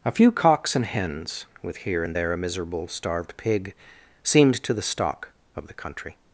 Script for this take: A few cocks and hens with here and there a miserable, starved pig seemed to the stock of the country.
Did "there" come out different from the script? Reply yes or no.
no